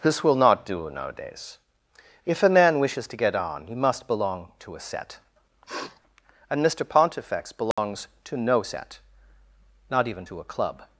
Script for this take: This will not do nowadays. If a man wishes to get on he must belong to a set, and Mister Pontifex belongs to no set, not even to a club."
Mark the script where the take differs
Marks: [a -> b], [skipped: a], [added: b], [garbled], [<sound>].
This will not do nowadays. If a man wishes to get on he must belong to a set, [sniff] and Mister Pontifex belongs [dropout] to no set, not even to a club."